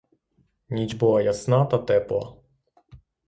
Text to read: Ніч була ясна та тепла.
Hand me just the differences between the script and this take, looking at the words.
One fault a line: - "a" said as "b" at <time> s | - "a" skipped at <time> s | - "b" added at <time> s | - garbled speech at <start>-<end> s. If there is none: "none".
none